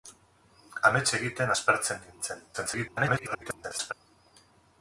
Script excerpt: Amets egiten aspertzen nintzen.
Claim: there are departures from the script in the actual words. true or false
true